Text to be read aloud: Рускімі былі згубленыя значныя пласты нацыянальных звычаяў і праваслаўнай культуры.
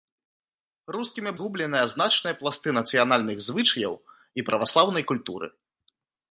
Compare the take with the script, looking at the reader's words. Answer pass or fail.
fail